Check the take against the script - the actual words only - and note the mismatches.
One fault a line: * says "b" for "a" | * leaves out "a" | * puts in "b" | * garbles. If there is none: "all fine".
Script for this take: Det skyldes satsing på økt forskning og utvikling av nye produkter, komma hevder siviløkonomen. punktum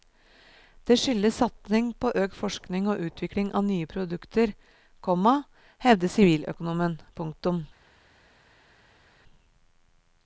all fine